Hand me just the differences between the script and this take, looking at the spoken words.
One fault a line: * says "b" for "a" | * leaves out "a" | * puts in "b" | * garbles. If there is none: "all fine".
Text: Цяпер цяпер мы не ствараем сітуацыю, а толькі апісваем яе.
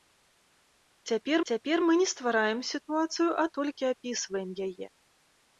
all fine